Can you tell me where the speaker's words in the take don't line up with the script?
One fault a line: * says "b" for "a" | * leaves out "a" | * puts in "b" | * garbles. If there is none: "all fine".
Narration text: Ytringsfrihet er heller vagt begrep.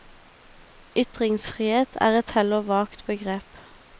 * puts in "et"